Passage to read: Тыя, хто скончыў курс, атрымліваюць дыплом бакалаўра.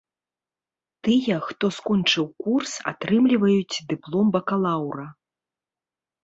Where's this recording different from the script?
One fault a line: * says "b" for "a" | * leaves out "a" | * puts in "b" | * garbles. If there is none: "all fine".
all fine